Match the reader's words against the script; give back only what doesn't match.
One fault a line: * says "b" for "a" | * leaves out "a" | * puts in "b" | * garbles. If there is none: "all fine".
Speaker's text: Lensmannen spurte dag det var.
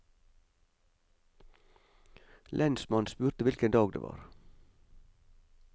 * puts in "hvilken"